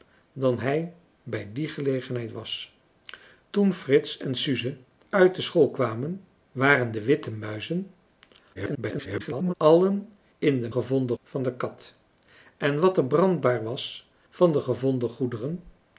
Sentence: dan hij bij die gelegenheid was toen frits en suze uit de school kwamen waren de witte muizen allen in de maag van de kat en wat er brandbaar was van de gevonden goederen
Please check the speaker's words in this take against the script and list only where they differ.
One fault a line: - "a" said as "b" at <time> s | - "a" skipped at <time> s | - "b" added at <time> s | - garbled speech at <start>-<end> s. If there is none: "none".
- garbled speech at 8.5-9.5 s
- "maag" said as "gevonden" at 10.7 s